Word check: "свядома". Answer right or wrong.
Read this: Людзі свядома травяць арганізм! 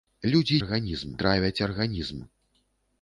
wrong